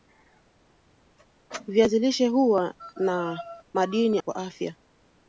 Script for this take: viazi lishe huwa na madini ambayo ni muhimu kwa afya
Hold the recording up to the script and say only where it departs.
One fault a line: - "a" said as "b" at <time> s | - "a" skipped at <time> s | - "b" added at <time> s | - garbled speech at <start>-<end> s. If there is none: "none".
- "ambayo ni muhimu" skipped at 4.2 s